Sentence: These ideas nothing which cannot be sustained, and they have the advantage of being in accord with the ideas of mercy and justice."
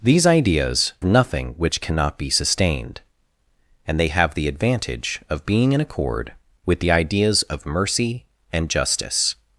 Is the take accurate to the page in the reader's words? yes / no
yes